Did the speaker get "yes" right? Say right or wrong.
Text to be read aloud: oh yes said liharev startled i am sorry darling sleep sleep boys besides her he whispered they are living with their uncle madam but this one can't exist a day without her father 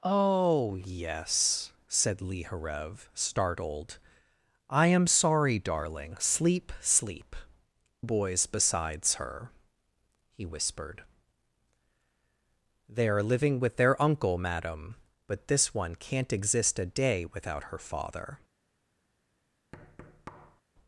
right